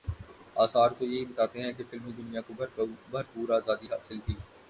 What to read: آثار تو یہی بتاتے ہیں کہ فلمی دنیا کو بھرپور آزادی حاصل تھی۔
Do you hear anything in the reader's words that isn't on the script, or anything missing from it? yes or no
no